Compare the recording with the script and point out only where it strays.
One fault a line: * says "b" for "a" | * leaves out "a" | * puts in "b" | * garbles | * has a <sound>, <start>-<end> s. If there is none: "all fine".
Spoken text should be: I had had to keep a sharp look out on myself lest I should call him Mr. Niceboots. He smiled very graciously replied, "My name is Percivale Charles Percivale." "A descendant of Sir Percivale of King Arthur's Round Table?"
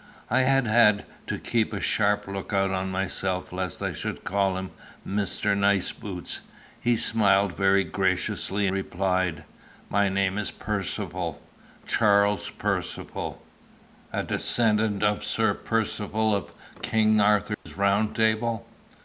* has a dropout, 17.5-17.7 s